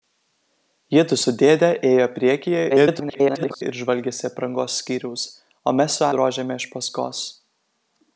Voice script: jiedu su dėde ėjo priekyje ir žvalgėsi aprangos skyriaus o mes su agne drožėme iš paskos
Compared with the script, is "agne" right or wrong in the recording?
wrong